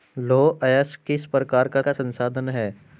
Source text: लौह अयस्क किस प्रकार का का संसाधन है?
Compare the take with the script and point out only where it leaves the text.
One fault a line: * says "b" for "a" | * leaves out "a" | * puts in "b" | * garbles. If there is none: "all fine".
all fine